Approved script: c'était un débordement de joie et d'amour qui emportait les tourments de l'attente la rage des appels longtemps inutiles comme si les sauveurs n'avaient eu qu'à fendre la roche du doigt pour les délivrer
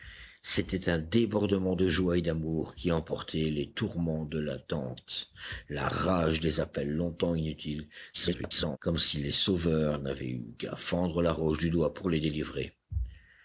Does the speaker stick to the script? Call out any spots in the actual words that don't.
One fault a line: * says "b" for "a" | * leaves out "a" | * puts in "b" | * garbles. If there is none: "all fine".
* garbles